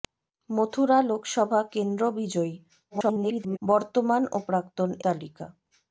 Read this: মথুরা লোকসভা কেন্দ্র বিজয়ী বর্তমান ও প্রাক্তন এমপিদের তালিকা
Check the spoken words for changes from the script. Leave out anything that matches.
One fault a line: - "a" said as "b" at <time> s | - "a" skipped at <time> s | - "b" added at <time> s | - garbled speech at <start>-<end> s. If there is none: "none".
- garbled speech at 2.9-3.6 s
- "এমপিদের" skipped at 4.9 s